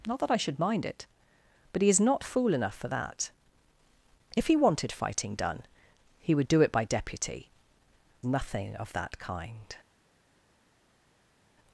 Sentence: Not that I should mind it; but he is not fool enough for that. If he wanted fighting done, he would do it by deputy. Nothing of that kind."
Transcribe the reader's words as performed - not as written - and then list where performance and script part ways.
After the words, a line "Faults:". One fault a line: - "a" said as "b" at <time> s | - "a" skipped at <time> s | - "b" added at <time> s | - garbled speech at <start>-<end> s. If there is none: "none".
Not that I should mind it; but he is not fool enough for that. If he wanted fighting done, he would do it by deputy. Nothing of that kind."
Faults:
none